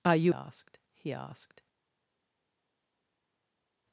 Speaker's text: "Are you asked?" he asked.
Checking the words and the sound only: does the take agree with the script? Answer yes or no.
yes